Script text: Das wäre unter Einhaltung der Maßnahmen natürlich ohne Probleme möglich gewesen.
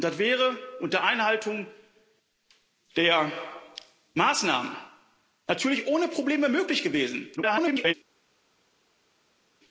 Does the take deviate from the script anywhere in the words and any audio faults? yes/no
yes